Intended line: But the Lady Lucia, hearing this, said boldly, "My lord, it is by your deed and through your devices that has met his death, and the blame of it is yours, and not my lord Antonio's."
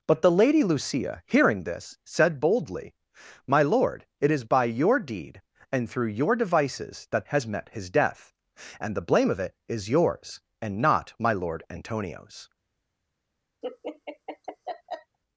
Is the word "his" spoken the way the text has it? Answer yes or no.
yes